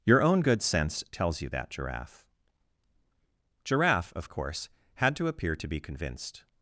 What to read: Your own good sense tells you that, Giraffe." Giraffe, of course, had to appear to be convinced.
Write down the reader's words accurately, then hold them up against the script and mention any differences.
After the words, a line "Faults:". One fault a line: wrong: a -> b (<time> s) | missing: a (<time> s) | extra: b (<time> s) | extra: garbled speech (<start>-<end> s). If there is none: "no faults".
Your own good sense tells you that, Giraffe." Giraffe, of course, had to appear to be convinced.
Faults:
no faults